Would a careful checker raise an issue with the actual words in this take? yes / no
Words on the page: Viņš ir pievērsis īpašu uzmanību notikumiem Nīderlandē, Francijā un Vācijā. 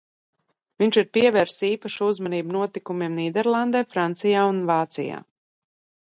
no